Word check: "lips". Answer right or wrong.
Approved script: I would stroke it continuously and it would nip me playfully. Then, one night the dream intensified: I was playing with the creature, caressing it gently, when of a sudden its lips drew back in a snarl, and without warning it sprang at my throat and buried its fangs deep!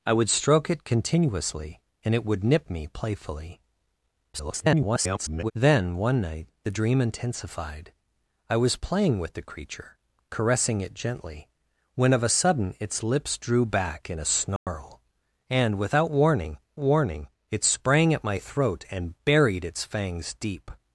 right